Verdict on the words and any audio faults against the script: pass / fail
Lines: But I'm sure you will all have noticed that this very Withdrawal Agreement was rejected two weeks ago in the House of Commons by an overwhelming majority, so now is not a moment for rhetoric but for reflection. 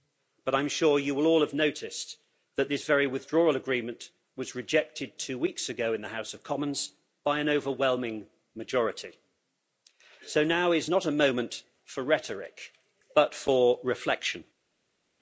pass